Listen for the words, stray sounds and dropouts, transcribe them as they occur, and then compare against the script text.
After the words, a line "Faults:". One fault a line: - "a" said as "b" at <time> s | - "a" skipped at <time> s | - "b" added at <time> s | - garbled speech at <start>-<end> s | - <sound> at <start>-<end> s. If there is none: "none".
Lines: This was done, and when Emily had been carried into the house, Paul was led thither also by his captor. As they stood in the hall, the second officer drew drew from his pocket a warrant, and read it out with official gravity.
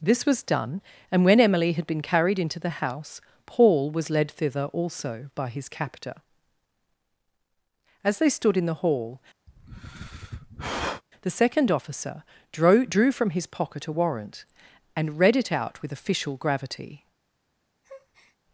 This was done, and when Emily had been carried into the house, Paul was led thither also by his captor. As they stood in the hall, the second officer drew drew from his pocket a warrant, and read it out with official gravity.
Faults:
- sigh at 9.5-11.0 s
- breath at 17.8-18.4 s